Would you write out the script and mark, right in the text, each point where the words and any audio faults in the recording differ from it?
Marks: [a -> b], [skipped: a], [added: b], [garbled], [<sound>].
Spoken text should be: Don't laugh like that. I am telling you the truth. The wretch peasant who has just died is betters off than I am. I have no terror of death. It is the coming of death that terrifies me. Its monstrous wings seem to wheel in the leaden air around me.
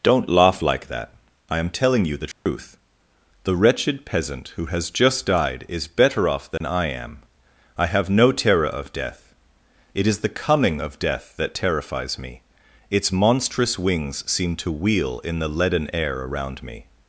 Don't laugh like that. I am telling you the truth. [dropout] The [wretch -> wretched] peasant who has just died is [betters -> better] off than [dropout] I am. I have no terror of death. It is the coming of death that terrifies me. Its monstrous wings seem to wheel in the leaden air around me.